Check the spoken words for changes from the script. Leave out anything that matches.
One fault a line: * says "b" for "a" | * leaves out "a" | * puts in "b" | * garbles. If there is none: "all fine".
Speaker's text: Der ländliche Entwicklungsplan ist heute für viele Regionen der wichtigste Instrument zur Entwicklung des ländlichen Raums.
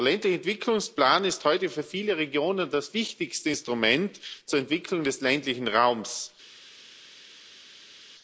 * says "das" for "der"